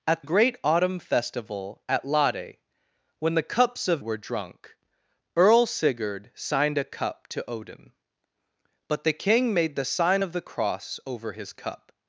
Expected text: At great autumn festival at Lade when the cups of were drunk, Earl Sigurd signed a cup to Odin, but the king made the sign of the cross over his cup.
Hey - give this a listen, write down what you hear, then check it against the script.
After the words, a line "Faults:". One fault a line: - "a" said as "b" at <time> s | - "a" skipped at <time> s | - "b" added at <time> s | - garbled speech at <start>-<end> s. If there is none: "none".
At great autumn festival at Lade when the cups of were drunk, Earl Sigurd signed a cup to Odin, but the king made the sign of the cross over his cup.
Faults:
none